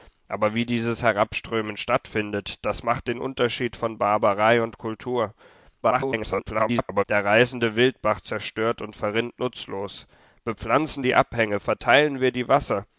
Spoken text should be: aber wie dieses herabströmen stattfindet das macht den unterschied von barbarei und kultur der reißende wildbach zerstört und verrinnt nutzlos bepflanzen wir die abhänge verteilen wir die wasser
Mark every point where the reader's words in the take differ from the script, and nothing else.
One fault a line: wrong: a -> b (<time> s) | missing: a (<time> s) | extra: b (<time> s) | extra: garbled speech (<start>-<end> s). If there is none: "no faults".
extra: garbled speech (5.8-7.0 s)
missing: wir (11.1 s)